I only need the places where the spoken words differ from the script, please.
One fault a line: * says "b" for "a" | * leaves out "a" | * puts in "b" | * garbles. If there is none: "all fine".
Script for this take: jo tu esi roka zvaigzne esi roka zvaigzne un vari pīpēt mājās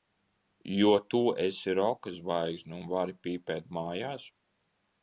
* leaves out "esi roka zvaigzne"